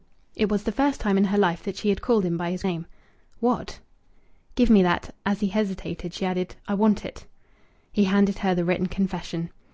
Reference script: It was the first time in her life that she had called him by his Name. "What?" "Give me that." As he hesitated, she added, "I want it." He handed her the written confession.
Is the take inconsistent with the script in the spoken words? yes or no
no